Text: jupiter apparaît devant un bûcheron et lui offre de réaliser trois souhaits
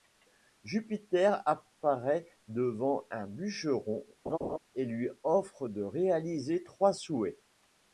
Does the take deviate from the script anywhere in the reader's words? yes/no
no